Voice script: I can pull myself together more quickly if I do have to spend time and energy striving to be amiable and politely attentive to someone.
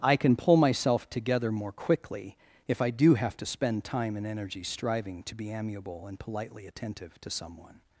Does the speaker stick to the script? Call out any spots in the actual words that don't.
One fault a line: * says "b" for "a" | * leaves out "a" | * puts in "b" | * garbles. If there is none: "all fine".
all fine